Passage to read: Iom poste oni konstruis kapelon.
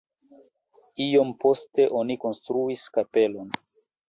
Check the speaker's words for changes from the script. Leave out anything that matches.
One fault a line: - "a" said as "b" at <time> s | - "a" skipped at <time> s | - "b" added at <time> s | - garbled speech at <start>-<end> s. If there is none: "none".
none